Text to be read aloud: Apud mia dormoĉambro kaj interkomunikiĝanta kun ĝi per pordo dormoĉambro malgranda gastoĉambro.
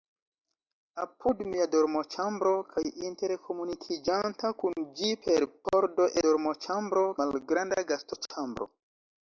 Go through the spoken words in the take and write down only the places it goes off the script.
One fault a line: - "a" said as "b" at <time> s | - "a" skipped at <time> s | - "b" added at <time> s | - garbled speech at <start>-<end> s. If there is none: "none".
none